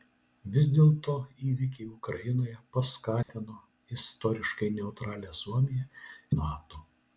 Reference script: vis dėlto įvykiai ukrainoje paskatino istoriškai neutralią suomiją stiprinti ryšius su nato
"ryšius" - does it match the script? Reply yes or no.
no